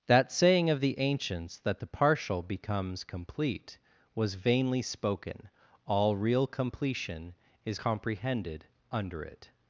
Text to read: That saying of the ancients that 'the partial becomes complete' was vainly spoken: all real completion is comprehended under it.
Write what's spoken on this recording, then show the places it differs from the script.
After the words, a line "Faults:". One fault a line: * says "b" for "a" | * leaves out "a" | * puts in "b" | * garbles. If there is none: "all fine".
That saying of the ancients that 'the partial becomes complete' was vainly spoken: all real completion is comprehended under it.
Faults:
all fine